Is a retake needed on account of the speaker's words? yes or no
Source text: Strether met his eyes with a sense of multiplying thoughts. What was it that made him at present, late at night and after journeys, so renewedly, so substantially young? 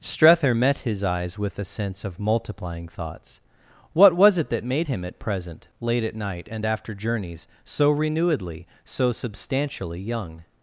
no